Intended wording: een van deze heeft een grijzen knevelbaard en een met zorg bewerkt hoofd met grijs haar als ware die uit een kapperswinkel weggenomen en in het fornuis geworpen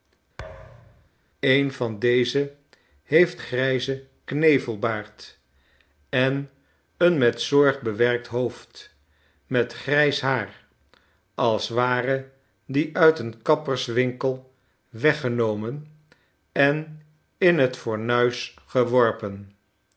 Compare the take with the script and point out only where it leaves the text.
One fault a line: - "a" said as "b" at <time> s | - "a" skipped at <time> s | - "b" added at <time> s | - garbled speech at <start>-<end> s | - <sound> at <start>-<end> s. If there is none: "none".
- thud at 0.4-1.1 s
- "een" skipped at 3.4 s